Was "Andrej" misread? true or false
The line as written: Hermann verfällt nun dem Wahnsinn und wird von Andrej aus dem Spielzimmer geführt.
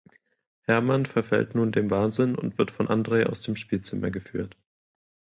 false